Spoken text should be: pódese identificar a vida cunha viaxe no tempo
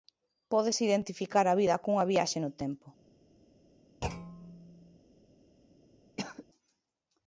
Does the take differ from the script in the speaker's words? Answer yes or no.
no